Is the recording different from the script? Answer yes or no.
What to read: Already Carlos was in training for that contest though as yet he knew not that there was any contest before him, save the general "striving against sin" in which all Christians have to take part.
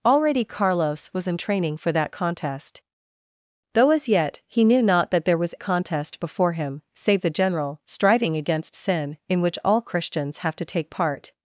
yes